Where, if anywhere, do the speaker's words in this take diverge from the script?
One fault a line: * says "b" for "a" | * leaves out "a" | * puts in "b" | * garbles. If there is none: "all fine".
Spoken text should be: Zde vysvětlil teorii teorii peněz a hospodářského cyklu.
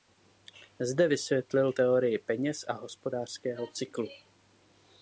* leaves out "teorii"